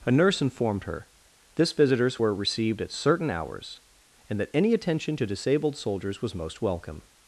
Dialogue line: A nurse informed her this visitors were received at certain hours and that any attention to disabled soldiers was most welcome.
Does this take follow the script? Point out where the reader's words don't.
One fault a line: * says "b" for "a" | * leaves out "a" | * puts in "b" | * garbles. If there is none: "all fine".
all fine